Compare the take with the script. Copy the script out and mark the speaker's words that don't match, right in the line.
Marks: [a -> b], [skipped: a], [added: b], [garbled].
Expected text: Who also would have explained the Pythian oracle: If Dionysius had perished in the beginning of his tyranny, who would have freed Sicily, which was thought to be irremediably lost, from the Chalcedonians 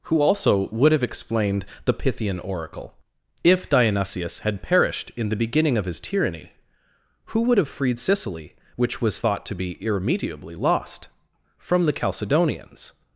Who also would have explained the Pythian oracle: If Dionysius had perished in the beginning of his tyranny, who would have freed Sicily, which was thought to be irremediably lost, from the Chalcedonians